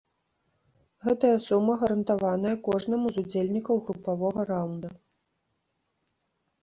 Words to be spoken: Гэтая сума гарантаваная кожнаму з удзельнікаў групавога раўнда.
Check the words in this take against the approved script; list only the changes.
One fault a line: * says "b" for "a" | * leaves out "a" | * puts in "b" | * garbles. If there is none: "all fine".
all fine